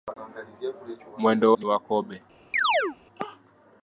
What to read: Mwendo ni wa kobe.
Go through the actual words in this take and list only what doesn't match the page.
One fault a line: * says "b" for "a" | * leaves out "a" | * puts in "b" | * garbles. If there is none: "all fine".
all fine